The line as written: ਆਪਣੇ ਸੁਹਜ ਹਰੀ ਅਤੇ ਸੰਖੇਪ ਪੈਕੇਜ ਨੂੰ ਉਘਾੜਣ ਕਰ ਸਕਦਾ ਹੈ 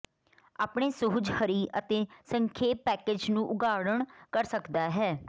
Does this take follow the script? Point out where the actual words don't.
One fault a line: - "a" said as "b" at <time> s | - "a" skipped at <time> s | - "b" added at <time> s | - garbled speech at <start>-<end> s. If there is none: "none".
none